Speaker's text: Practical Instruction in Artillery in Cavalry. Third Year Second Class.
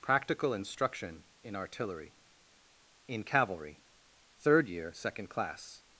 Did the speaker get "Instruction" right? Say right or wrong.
right